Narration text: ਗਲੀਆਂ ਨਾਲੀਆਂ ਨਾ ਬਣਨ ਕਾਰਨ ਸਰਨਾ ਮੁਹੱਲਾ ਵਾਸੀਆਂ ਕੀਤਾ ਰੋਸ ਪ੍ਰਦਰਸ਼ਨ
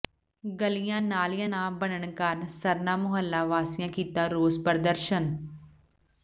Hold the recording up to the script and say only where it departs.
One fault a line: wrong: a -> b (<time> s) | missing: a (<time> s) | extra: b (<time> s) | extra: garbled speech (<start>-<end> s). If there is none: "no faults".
no faults